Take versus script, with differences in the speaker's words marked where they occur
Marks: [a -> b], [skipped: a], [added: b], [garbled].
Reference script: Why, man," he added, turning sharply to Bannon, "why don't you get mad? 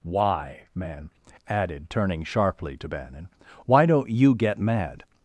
Why, man," [skipped: he] added, turning sharply to Bannon, "why don't you get mad?